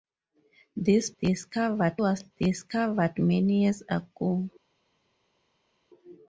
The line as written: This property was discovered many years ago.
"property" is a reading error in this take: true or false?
true